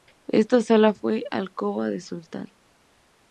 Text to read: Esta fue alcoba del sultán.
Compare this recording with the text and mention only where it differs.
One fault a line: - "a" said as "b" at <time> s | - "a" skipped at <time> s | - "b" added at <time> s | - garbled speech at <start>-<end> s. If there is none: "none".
- "sala" added at 0.6 s